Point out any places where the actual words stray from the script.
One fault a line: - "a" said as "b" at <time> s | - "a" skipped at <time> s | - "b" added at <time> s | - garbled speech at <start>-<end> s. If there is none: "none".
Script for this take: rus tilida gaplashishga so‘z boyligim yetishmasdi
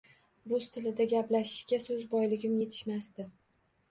none